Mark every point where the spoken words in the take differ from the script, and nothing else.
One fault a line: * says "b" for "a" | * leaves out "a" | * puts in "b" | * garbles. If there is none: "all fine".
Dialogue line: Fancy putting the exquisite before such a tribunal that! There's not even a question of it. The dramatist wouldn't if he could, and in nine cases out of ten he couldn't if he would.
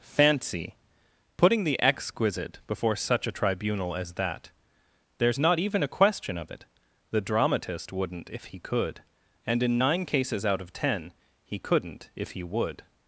* puts in "as"